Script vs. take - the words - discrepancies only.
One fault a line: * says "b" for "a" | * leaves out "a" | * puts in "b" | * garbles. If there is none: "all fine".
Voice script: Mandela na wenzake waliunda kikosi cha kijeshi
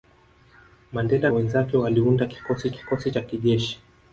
* leaves out "na"
* puts in "kikosi"